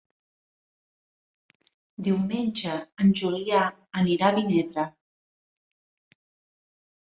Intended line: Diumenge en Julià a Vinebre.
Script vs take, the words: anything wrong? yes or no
yes